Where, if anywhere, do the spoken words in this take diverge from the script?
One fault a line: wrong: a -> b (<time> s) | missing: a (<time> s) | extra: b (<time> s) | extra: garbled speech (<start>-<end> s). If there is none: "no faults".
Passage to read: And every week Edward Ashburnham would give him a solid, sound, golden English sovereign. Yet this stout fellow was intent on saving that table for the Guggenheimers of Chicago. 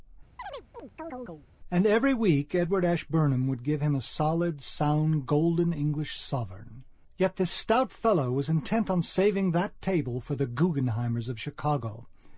no faults